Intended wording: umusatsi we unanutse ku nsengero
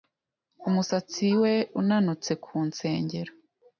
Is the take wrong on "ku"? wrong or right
right